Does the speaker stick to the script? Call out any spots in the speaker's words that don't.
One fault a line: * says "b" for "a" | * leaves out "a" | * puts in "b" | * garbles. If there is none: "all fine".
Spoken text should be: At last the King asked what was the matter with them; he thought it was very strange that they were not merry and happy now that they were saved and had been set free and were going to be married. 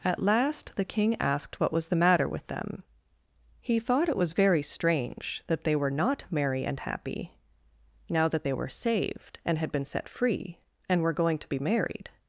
all fine